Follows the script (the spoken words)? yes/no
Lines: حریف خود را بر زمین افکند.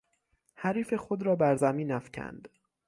yes